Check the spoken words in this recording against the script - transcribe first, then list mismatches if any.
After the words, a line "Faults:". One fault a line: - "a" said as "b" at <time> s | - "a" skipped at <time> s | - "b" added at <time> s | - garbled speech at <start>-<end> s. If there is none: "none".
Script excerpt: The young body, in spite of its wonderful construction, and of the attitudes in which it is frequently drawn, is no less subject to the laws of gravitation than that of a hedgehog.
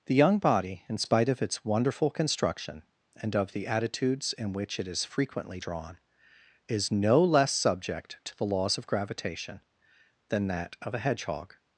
The young body, in spite of its wonderful construction, and of the attitudes in which it is frequently drawn, is no less subject to the laws of gravitation than that of a hedgehog.
Faults:
none